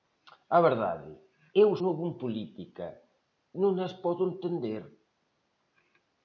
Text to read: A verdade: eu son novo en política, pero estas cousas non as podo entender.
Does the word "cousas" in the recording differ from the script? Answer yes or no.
yes